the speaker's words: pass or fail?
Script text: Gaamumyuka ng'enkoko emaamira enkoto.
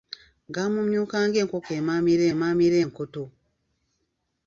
fail